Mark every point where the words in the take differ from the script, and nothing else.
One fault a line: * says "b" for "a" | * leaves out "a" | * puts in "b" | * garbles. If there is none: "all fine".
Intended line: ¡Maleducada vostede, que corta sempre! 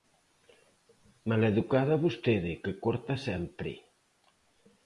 all fine